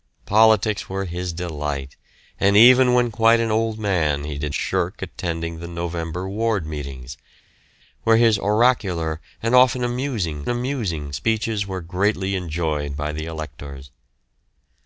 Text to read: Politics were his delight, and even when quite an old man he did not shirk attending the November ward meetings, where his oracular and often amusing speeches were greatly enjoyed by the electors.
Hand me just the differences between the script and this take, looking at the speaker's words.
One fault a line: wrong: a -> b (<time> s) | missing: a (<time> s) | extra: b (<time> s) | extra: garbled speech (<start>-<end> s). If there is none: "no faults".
missing: not (4.5 s)
extra: amusing (10.5 s)